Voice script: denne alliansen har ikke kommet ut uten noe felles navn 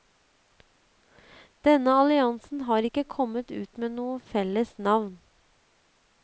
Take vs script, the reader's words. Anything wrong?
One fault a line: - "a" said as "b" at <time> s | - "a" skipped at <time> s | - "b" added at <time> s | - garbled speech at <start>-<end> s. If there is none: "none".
- "uten" said as "med" at 3.8 s